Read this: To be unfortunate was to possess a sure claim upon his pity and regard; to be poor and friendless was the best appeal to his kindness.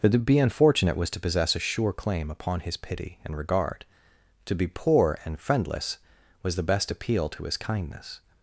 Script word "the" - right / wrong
right